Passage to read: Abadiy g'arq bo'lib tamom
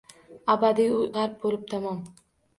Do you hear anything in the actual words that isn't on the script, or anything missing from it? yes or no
no